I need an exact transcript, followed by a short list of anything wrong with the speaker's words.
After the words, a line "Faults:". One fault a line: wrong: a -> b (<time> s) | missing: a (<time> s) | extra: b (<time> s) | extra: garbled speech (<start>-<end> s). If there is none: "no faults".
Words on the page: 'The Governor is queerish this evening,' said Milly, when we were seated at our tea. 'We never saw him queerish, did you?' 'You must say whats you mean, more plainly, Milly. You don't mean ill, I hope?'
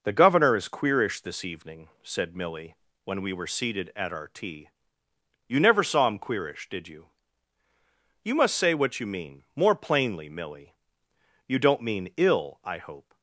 'The Governor is queerish this evening,' said Milly, when we were seated at our tea. 'You never saw him queerish, did you?' 'You must say what you mean, more plainly, Milly. You don't mean ill, I hope?'
Faults:
wrong: We -> You (5.5 s)
wrong: whats -> what (8.7 s)